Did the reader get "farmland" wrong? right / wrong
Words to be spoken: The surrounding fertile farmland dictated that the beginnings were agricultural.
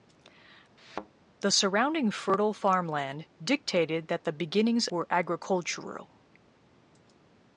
right